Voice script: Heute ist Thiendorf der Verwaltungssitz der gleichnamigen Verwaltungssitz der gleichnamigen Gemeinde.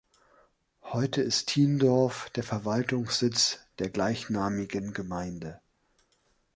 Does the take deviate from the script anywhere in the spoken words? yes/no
yes